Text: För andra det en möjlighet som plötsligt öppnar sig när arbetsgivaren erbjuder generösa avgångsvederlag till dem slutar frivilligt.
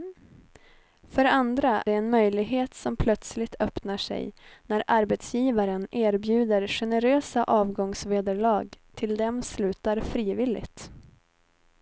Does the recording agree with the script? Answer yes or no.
yes